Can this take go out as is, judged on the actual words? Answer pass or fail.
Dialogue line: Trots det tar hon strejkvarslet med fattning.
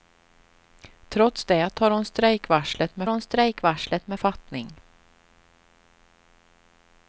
fail